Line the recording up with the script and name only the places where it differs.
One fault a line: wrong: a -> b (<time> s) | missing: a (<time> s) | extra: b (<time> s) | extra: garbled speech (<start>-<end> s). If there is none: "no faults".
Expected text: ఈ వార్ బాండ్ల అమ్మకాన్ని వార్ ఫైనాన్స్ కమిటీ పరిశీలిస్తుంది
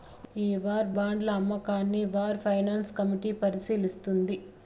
no faults